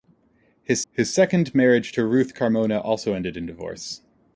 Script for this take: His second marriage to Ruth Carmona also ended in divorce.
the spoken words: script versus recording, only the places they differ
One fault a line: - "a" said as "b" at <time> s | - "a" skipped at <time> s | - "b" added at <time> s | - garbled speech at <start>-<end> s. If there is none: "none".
- "his" added at 0.9 s